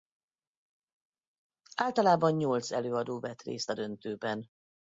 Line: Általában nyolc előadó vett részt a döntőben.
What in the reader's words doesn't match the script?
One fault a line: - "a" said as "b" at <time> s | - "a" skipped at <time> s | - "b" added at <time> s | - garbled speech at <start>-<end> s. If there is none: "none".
none